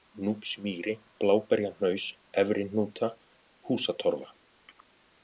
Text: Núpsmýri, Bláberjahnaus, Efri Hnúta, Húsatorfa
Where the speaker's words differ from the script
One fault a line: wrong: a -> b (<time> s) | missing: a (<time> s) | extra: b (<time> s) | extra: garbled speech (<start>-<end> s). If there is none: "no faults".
no faults